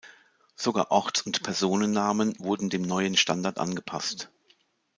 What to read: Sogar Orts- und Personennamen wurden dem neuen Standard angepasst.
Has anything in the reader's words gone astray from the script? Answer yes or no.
no